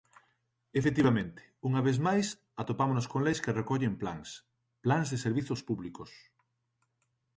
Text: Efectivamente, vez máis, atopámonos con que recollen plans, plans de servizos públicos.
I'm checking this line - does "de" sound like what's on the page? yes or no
yes